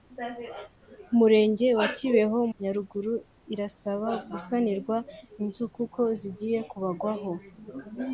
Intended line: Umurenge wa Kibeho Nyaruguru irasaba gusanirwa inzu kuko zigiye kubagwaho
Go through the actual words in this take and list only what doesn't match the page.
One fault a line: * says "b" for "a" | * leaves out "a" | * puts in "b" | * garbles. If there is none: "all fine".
all fine